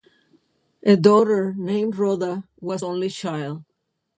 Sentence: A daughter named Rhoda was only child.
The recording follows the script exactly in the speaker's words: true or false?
true